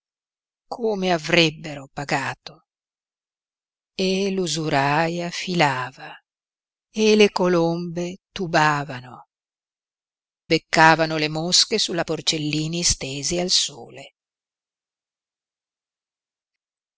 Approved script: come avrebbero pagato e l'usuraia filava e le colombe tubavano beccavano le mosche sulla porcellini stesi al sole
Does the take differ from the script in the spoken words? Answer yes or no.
no